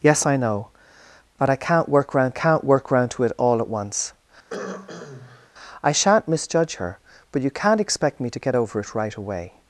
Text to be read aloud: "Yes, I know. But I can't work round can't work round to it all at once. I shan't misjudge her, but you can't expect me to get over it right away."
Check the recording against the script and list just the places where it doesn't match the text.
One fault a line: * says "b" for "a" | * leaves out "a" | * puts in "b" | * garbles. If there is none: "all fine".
all fine